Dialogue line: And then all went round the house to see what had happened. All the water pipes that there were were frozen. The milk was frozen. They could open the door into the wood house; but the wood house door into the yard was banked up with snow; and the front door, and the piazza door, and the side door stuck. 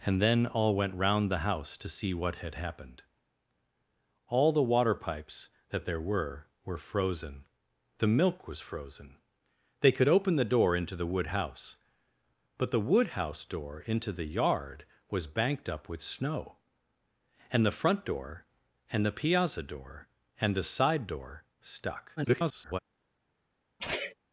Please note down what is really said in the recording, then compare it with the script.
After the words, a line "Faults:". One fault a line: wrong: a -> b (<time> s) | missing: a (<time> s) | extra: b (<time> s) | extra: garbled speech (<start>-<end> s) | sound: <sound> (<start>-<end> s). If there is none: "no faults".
And then all went round the house to see what had happened. All the water pipes that there were were frozen. The milk was frozen. They could open the door into the wood house; but the wood house door into the yard was banked up with snow; and the front door, and the piazza door, and the side door stuck. [garbled]
Faults:
extra: garbled speech (22.2-22.8 s)
sound: sneeze (23.8-24.1 s)